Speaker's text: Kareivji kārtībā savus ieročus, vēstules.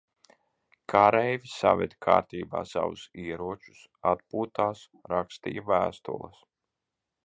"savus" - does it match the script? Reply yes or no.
yes